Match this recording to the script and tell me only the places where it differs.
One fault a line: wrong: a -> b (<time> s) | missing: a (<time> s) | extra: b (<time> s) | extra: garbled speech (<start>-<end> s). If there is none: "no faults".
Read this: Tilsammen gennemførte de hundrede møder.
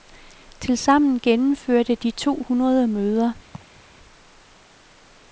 extra: to (2.1 s)